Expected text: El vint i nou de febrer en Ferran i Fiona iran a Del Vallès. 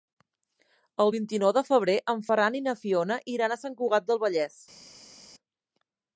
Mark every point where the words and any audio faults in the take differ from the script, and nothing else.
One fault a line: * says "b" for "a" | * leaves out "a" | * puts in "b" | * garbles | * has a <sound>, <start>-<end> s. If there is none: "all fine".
* puts in "na"
* puts in "Sant Cugat"